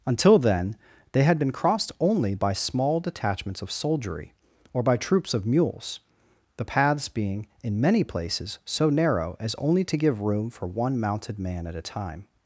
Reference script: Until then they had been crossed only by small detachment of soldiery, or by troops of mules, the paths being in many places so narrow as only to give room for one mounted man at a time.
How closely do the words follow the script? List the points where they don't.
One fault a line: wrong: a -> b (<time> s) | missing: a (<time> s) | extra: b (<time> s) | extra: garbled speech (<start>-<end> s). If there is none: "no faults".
wrong: detachment -> detachments (3.0 s)